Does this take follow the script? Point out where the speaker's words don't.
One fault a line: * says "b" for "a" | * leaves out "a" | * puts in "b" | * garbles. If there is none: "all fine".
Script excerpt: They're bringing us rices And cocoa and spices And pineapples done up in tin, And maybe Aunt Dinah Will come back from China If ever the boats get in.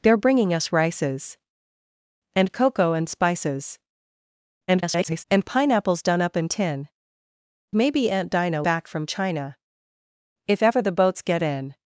* garbles
* leaves out "And"
* leaves out "Will come"